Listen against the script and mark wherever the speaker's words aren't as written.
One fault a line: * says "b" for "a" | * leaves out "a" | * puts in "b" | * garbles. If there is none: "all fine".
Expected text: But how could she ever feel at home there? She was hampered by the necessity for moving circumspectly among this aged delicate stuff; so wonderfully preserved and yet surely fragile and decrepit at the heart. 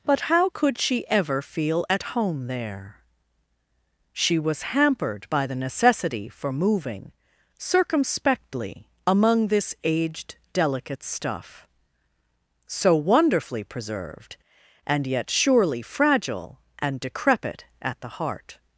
all fine